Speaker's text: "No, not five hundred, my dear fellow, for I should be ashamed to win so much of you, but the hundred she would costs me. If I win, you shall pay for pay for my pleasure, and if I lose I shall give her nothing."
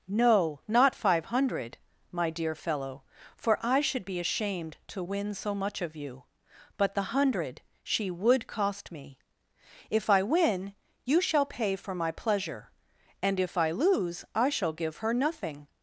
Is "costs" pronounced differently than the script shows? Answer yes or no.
yes